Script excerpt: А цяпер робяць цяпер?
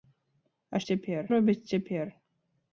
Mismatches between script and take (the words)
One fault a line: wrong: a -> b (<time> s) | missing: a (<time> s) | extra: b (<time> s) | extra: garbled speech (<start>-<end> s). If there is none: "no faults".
no faults